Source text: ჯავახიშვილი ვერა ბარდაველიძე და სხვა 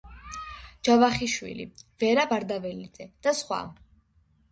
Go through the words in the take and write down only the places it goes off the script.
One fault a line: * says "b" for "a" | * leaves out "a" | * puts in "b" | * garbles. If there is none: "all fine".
all fine